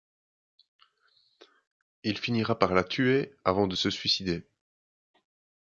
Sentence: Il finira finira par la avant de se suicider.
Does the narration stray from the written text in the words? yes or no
yes